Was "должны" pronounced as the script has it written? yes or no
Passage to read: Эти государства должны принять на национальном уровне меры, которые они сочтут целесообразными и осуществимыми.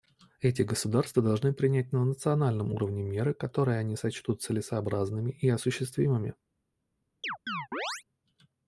yes